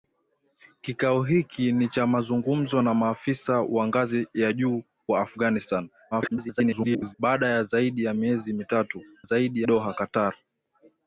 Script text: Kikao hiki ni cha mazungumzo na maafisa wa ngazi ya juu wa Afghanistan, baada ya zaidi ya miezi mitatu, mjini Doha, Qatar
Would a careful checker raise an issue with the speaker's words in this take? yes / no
yes